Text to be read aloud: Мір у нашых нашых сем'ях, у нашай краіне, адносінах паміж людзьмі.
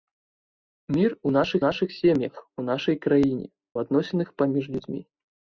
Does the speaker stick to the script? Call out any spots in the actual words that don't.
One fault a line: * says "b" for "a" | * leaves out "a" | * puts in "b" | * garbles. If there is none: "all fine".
all fine